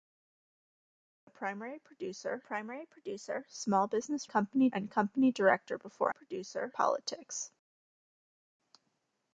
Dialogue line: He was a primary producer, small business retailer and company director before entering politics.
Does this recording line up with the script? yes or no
no